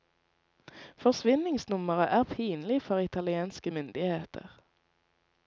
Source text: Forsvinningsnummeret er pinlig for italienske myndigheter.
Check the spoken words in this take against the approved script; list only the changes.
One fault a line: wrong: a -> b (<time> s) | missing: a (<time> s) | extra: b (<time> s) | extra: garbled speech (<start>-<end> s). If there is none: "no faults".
no faults